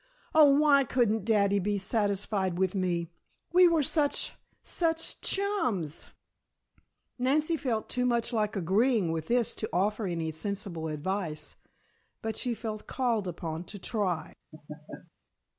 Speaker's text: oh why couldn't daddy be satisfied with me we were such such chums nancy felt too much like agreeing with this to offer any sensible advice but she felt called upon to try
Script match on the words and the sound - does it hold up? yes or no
no